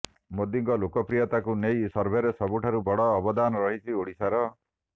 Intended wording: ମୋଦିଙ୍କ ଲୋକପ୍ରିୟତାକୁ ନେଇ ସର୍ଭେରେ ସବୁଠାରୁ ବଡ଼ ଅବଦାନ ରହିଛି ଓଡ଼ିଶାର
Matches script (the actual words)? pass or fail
pass